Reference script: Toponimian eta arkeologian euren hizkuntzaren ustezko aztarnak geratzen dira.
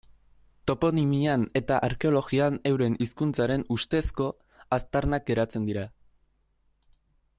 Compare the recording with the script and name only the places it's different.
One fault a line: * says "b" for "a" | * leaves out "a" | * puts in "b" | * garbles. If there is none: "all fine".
all fine